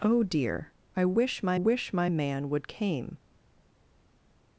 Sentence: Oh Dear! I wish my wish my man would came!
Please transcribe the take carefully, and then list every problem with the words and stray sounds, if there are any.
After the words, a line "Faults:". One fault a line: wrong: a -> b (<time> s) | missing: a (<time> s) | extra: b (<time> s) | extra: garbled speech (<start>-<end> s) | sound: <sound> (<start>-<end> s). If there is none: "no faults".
Oh Dear! I wish my wish my man would came!
Faults:
no faults